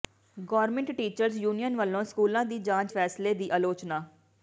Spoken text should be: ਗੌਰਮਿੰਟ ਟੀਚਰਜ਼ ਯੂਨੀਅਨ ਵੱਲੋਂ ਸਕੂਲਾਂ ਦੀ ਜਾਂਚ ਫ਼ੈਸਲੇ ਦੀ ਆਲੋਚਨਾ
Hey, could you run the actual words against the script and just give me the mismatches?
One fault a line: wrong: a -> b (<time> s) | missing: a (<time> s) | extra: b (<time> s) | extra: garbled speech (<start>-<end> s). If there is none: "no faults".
no faults